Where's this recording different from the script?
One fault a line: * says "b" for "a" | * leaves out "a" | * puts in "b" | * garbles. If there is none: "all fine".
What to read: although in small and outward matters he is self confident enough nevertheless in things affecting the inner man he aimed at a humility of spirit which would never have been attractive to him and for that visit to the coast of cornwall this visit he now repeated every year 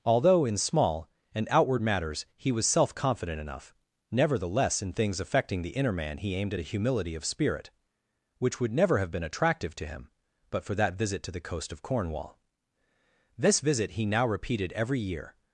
* says "was" for "is"
* says "but" for "and"